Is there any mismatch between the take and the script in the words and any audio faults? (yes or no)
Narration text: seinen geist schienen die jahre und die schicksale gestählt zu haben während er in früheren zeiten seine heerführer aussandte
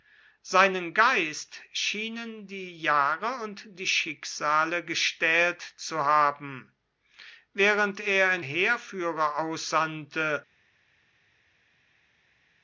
yes